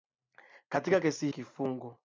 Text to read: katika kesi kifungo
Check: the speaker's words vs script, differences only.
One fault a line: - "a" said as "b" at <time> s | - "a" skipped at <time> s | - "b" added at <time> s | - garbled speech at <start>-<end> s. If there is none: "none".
none